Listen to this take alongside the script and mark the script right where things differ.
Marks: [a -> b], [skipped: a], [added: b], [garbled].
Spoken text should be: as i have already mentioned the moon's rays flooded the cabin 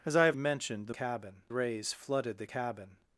as i have [skipped: already] mentioned the [moon's -> cabin] rays flooded the cabin